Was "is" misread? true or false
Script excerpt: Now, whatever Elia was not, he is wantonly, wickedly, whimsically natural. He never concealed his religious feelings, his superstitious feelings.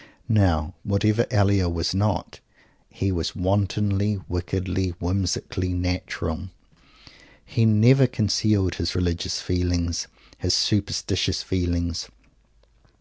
true